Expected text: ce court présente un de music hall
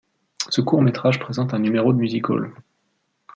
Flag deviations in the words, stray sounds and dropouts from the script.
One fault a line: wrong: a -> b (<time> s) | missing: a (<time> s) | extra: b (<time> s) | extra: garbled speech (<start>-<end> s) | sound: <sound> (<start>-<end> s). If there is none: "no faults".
extra: métrage (0.8 s)
extra: numéro (1.6 s)